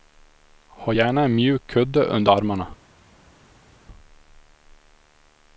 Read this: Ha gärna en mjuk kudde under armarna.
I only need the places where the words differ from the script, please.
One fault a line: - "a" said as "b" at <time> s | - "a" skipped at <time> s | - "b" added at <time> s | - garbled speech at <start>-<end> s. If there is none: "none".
none